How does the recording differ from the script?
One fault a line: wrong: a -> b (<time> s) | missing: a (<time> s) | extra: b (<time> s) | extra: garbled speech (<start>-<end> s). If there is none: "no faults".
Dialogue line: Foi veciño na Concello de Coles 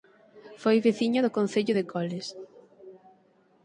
wrong: na -> do (1.2 s)